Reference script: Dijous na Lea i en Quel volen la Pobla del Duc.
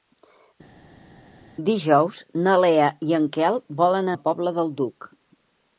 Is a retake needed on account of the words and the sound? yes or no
no